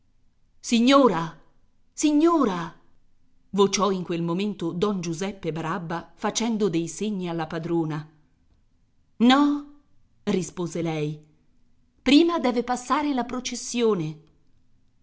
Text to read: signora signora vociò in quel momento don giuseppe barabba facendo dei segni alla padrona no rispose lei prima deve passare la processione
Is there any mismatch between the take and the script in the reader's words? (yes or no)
no